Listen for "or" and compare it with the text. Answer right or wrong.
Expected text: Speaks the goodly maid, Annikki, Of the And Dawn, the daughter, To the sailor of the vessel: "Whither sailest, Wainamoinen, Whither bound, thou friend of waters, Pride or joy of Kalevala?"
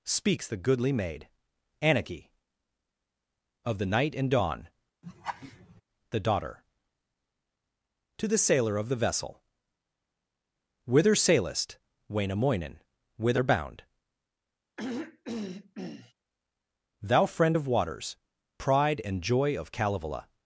wrong